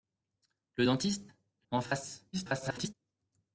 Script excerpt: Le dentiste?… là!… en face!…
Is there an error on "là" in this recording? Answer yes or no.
yes